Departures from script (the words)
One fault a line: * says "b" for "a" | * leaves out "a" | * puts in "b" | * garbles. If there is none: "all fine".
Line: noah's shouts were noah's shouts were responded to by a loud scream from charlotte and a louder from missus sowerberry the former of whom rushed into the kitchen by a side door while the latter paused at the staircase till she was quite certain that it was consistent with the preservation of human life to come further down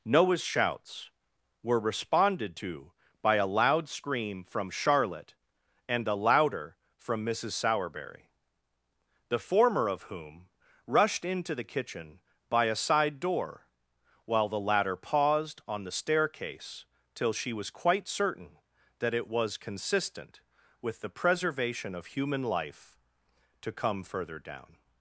* leaves out "noah's shouts were"
* says "on" for "at"